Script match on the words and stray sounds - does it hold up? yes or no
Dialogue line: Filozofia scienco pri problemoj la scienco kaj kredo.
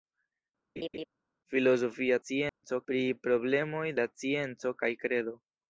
no